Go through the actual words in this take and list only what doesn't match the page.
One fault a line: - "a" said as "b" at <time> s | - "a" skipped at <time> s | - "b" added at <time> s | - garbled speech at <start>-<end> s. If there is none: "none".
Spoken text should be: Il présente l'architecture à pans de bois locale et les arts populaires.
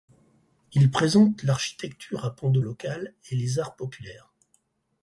- "bois" skipped at 2.6 s